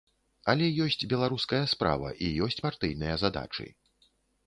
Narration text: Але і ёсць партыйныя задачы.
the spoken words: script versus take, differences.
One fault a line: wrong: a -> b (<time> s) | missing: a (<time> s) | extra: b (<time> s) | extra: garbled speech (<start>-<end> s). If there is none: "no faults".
extra: ёсць беларуская справа (0.8 s)